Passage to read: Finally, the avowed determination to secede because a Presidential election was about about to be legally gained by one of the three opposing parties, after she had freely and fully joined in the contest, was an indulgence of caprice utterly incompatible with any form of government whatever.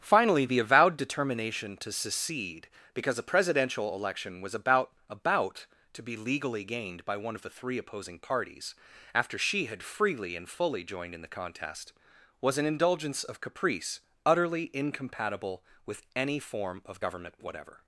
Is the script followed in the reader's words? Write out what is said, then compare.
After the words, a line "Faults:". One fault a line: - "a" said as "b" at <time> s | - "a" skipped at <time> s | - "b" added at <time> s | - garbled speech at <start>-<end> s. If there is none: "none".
Finally, the avowed determination to secede because a Presidential election was about about to be legally gained by one of the three opposing parties, after she had freely and fully joined in the contest, was an indulgence of caprice utterly incompatible with any form of government whatever.
Faults:
none